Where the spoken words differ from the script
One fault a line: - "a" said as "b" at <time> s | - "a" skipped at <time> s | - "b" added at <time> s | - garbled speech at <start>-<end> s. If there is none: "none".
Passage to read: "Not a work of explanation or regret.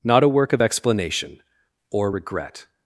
none